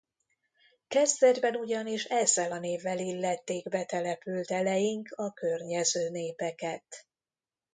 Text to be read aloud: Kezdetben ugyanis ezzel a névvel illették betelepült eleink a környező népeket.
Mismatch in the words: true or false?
false